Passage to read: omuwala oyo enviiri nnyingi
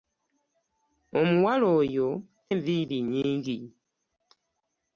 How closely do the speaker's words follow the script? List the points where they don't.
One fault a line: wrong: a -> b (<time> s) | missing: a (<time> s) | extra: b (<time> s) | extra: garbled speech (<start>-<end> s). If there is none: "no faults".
no faults